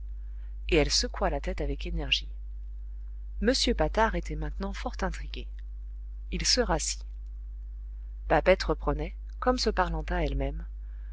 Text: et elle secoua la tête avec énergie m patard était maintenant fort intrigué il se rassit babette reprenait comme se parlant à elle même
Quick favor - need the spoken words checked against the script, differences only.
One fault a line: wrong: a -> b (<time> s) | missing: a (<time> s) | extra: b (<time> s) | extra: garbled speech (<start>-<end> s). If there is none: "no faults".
no faults